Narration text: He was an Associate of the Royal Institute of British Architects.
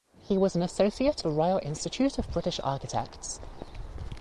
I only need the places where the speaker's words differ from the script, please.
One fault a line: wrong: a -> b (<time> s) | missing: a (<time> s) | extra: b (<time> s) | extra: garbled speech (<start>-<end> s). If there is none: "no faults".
missing: of (1.2 s)